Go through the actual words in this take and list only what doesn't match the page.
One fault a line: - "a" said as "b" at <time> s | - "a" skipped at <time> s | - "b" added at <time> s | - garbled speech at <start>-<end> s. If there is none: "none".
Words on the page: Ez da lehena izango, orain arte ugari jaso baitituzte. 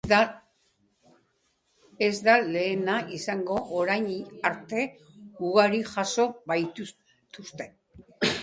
none